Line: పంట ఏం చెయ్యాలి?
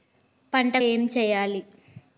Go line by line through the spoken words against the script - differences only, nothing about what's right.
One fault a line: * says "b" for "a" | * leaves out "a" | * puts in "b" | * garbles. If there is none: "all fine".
all fine